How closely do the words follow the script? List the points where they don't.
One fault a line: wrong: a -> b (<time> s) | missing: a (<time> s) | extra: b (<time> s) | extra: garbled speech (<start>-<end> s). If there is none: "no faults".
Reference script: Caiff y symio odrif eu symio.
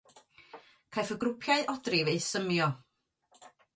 wrong: symio -> grwpiau (1.2 s)